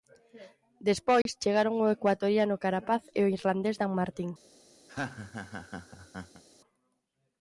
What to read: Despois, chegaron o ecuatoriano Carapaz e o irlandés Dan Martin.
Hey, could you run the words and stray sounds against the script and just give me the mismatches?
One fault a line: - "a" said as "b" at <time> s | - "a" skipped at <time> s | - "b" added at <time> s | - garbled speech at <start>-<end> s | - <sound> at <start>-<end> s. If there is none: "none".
- dropout at 1.2-1.3 s
- laugh at 4.9-6.4 s